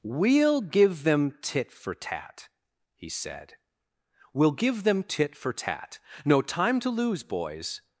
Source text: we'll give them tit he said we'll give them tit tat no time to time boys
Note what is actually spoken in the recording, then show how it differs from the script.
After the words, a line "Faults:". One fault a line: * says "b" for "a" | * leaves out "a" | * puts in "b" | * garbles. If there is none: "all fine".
we'll give them tit for tat he said we'll give them tit for tat no time to lose boys
Faults:
* puts in "for tat"
* puts in "for"
* says "lose" for "time"